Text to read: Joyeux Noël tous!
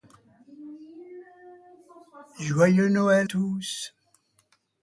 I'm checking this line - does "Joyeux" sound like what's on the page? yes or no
yes